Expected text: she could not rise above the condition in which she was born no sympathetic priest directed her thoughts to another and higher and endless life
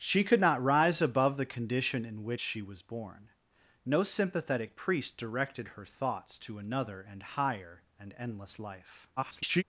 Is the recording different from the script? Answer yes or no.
yes